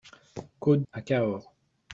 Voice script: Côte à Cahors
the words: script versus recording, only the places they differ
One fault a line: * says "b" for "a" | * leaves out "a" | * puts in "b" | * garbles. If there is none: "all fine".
all fine